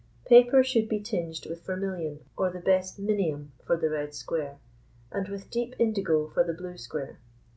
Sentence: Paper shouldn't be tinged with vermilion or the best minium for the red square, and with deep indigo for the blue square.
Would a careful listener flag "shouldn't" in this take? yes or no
yes